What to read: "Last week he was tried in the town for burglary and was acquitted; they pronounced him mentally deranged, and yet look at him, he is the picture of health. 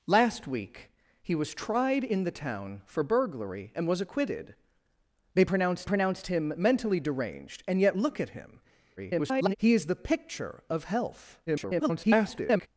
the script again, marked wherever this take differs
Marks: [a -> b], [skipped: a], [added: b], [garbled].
"Last week he was tried in the town for burglary and was acquitted; they pronounced [added: pronounced] him mentally deranged, and yet look at him, [garbled] he is the picture of health. [garbled]